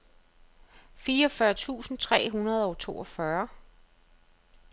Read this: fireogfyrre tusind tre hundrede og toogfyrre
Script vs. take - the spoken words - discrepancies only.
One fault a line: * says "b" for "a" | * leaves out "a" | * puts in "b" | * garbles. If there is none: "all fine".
all fine